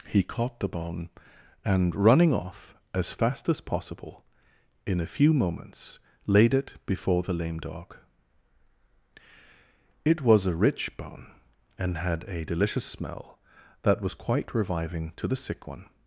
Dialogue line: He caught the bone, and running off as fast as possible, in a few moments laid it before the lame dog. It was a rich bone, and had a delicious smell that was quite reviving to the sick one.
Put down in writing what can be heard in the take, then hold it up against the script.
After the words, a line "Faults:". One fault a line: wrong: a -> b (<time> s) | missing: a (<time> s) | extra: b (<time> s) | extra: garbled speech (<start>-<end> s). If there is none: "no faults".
He caught the bone, and running off as fast as possible, in a few moments laid it before the lame dog. It was a rich bone, and had a delicious smell that was quite reviving to the sick one.
Faults:
no faults